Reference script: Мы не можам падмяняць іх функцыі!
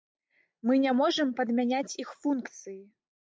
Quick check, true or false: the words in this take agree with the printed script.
true